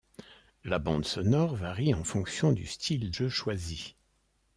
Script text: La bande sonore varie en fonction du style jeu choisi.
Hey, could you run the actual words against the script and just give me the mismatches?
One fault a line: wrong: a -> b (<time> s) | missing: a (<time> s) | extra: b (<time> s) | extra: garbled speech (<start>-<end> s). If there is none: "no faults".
no faults